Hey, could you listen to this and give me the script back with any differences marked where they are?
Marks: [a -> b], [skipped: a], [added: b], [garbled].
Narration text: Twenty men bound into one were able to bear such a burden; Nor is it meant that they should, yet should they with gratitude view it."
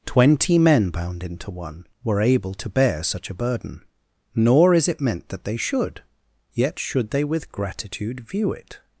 Twenty men bound into one were able to bear such a burden; Nor is it meant that they should, yet should they with gratitude view it."